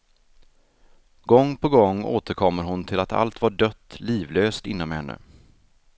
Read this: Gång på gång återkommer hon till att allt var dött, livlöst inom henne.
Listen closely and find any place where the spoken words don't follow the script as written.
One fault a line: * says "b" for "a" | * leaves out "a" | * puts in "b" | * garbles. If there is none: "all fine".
all fine